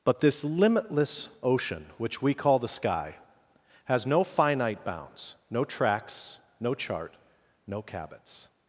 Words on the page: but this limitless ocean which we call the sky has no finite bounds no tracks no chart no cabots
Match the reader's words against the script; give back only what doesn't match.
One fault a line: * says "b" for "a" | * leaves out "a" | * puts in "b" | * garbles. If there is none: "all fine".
all fine